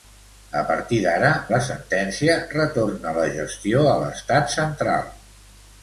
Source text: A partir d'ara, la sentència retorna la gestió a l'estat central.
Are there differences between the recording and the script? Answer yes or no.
no